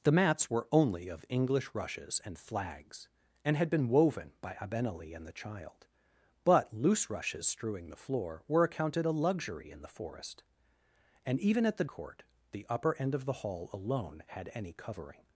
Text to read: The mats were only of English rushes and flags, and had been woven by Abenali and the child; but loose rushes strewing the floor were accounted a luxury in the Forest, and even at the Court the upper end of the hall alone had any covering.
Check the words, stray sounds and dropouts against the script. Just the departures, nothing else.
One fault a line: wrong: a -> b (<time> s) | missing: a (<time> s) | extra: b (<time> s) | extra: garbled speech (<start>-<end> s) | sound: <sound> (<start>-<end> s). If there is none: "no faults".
no faults